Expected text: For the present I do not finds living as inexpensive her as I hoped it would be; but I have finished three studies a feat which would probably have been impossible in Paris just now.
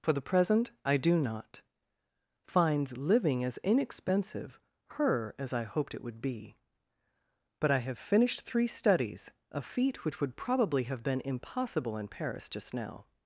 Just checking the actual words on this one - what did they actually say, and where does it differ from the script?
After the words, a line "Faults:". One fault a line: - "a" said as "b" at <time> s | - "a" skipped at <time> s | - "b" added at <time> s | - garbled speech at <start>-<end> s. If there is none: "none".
For the present I do not finds living as inexpensive her as I hoped it would be; but I have finished three studies a feat which would probably have been impossible in Paris just now.
Faults:
none